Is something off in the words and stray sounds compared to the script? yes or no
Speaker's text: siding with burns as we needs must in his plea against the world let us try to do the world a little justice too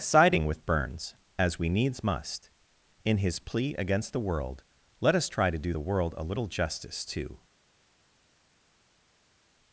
no